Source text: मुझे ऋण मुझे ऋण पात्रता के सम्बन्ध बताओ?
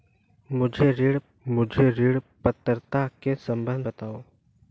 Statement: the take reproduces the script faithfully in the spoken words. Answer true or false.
true